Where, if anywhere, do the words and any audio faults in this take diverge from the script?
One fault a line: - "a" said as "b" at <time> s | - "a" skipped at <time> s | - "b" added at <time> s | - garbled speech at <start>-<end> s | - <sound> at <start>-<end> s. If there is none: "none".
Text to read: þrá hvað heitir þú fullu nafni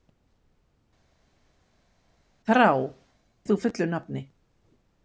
- "hvað heitir" skipped at 2.7 s